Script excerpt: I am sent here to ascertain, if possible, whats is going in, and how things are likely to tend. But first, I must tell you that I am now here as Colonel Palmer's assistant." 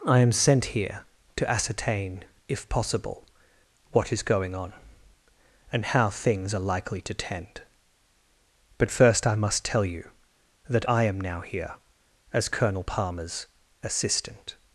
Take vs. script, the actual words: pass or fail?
fail